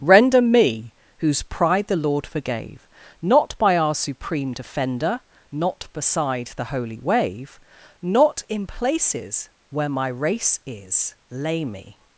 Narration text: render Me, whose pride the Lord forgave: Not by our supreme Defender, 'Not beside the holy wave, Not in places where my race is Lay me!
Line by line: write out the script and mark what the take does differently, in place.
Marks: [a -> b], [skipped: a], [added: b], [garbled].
render Me, whose pride the Lord forgave: Not by our supreme Defender, 'Not beside the holy wave, Not in places where my race is Lay me!